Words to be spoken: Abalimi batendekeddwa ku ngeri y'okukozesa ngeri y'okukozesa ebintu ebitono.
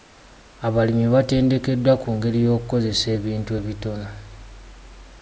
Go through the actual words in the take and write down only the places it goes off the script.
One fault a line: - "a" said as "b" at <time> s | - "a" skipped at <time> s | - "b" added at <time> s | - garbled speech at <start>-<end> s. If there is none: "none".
- "ngeri y'okukozesa" skipped at 3.1 s